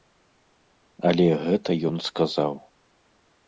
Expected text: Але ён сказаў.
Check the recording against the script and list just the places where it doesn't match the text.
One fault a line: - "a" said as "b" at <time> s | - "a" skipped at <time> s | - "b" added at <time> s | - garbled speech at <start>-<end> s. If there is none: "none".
- "гэта" added at 1.4 s